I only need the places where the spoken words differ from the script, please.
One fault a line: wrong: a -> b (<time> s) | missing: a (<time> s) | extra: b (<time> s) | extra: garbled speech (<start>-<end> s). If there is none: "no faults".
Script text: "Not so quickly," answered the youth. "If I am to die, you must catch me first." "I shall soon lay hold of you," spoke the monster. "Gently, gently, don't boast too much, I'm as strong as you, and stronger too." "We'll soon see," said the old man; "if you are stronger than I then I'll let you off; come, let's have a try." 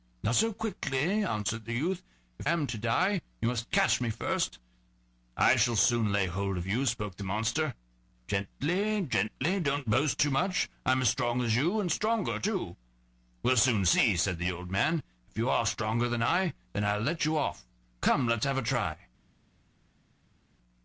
missing: I (2.5 s)